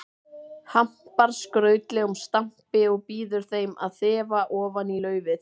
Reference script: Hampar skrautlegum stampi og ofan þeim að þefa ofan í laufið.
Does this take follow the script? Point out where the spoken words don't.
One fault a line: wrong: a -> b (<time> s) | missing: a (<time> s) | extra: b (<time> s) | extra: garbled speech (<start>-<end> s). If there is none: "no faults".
wrong: ofan -> býður (3.1 s)